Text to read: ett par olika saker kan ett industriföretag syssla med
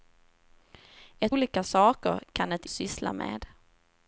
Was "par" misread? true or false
true